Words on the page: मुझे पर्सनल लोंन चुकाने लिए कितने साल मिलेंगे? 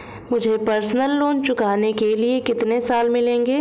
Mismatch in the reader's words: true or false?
true